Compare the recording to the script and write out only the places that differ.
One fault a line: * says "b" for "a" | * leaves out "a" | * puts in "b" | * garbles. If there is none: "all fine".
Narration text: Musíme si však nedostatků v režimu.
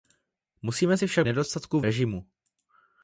all fine